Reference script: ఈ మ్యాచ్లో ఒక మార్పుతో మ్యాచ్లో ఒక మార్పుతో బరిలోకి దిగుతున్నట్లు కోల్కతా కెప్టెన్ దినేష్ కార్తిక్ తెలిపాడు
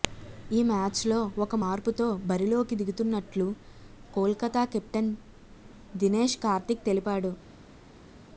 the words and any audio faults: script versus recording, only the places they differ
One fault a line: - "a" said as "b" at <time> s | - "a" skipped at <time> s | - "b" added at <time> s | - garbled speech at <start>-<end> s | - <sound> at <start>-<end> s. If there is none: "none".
- "మ్యాచ్లో ఒక మార్పుతో" skipped at 2.1 s